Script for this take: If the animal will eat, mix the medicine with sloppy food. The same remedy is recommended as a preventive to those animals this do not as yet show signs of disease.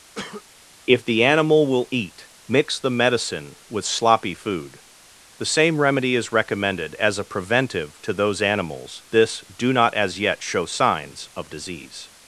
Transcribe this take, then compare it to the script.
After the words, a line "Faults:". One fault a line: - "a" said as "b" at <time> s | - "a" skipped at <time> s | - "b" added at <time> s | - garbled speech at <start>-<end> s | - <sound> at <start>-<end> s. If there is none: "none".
If the animal will eat, mix the medicine with sloppy food. The same remedy is recommended as a preventive to those animals this do not as yet show signs of disease.
Faults:
- cough at 0.2-0.4 s